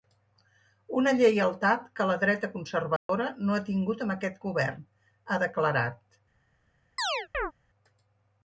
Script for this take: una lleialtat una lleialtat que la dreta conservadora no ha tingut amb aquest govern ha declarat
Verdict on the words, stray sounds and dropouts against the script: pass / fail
fail